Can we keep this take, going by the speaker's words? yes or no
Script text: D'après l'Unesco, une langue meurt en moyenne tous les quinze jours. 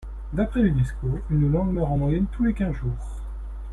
yes